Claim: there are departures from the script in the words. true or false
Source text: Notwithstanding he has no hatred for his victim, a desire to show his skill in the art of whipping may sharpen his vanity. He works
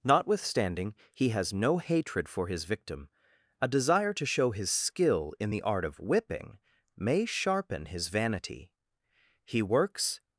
false